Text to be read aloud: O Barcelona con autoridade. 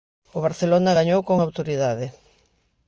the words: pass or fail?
fail